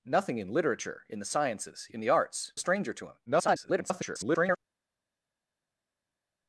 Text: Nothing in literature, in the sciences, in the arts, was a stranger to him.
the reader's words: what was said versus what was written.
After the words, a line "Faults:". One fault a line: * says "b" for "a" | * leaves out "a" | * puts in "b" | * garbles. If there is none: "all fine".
Nothing in literature, in the sciences, in the arts, a stranger to him. [garbled]
Faults:
* leaves out "was"
* garbles